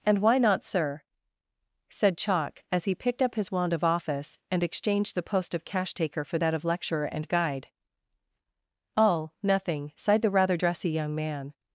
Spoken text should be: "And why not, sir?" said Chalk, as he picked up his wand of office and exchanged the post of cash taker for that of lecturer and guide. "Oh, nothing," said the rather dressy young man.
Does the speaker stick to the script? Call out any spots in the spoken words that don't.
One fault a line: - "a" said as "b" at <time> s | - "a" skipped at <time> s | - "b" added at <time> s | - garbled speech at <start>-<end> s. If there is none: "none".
- "said" said as "sighed" at 9.9 s